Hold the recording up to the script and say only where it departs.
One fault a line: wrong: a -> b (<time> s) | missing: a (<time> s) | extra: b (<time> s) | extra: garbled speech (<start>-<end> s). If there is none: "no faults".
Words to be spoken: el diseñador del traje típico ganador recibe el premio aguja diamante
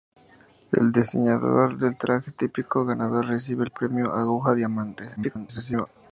extra: garbled speech (5.2-5.9 s)